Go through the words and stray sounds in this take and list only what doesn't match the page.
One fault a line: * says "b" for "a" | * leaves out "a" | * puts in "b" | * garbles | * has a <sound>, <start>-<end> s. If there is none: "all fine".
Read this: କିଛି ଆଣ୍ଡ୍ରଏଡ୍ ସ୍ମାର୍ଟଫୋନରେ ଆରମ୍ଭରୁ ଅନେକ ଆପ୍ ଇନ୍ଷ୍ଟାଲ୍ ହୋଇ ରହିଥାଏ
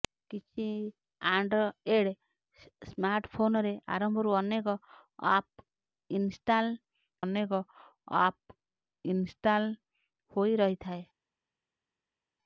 * puts in "ଅନେକ ଆପ୍ ଇନ୍ଷ୍ଟାଲ୍"